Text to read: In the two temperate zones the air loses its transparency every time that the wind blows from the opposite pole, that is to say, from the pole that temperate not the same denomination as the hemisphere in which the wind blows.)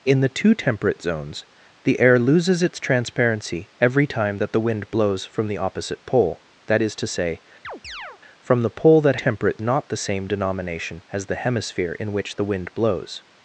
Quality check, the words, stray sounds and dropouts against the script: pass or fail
fail